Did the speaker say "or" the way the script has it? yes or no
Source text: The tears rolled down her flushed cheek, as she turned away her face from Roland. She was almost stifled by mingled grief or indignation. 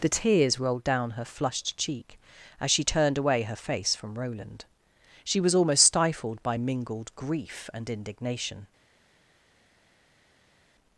no